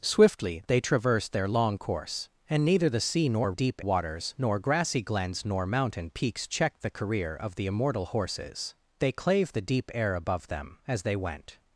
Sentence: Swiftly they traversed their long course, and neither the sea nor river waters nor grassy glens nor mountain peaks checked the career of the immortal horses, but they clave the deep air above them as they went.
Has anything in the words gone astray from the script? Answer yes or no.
yes